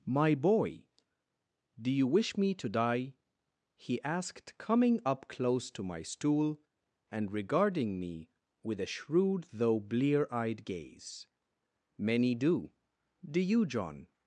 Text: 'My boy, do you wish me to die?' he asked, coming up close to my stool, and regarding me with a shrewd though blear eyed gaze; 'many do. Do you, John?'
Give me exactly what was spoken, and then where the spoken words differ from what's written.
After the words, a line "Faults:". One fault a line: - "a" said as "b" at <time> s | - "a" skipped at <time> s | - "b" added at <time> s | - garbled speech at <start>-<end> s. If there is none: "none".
'My boy, do you wish me to die?' he asked, coming up close to my stool, and regarding me with a shrewd though blear eyed gaze; 'many do. Do you, John?'
Faults:
none